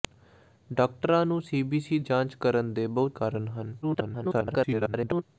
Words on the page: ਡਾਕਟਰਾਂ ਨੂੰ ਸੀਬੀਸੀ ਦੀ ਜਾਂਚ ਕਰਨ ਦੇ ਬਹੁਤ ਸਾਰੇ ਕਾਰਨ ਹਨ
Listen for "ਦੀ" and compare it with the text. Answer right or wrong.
wrong